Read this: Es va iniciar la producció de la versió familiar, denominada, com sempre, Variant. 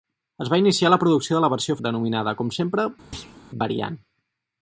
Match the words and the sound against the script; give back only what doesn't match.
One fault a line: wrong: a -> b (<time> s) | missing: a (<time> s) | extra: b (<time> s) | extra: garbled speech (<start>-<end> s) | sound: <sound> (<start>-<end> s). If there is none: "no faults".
missing: familiar (1.8 s)
sound: thud (3.1-3.5 s)